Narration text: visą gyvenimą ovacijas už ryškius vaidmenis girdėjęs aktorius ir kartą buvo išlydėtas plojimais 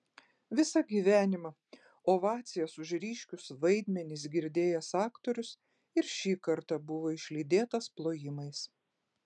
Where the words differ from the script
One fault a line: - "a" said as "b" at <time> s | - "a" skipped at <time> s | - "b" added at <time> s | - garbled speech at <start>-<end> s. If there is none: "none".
- "šį" added at 6.2 s